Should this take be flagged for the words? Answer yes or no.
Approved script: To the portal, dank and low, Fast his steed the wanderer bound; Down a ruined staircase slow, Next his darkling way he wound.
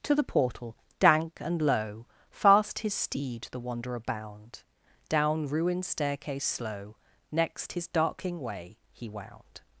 yes